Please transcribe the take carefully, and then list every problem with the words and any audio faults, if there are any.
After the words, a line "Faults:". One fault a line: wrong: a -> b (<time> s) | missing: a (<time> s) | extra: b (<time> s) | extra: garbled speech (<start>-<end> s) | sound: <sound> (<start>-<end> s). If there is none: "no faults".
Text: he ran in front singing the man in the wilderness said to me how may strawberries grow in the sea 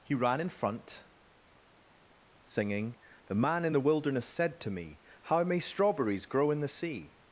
he ran in front singing the man in the wilderness said to me how may strawberries grow in the sea
Faults:
no faults